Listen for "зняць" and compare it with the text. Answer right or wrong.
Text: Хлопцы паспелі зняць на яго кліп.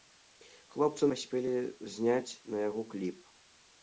right